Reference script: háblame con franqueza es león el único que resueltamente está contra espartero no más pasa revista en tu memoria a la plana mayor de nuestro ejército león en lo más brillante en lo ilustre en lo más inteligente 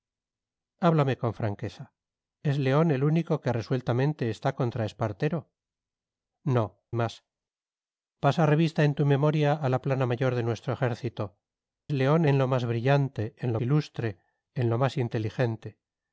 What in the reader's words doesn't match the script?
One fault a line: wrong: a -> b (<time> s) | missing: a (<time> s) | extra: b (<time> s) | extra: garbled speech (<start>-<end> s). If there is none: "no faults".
no faults